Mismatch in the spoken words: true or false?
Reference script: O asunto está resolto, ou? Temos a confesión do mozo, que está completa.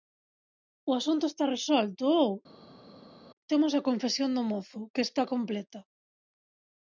false